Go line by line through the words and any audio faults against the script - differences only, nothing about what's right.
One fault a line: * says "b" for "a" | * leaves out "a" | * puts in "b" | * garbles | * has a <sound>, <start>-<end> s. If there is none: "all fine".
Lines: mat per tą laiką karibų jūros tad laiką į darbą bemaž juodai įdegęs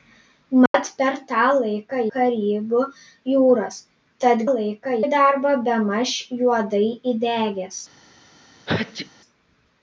* has a dropout, 0.7-0.7 s
* has a sneeze, 8.7-9.1 s